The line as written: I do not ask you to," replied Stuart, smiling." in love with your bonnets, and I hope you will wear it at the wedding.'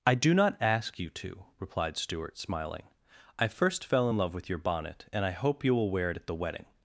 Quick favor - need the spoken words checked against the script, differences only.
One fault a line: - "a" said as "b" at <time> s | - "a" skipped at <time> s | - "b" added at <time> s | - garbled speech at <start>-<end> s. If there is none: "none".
- "I first fell" added at 3.4 s
- "bonnets" said as "bonnet" at 4.6 s